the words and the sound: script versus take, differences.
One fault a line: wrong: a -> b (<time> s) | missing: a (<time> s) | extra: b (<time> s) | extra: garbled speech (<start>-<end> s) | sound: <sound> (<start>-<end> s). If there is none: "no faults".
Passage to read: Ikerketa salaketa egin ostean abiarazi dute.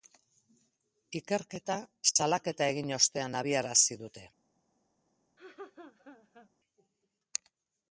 sound: laugh (5.4-6.5 s)